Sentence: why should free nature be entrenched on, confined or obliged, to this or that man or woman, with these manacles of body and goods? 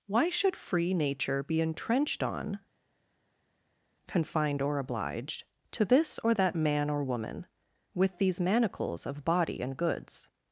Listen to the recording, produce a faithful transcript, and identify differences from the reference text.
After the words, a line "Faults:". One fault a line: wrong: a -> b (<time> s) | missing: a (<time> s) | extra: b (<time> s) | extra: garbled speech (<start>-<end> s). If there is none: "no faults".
why should free nature be entrenched on, confined or obliged, to this or that man or woman, with these manacles of body and goods?
Faults:
no faults